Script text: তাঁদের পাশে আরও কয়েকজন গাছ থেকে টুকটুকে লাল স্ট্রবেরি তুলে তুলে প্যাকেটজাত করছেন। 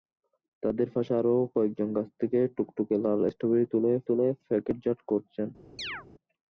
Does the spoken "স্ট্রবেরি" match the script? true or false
true